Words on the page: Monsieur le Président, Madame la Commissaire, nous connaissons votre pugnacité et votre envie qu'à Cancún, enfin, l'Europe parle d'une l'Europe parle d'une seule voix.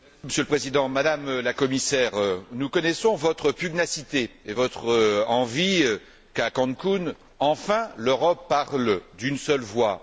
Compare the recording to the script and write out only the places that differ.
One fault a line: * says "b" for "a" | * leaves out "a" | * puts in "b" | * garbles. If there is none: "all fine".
* leaves out "l'Europe parle d'une"